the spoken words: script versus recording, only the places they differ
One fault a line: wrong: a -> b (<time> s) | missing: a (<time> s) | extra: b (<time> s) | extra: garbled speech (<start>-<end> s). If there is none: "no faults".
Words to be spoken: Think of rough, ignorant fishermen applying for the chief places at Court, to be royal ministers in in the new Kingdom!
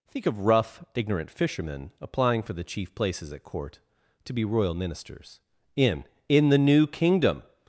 no faults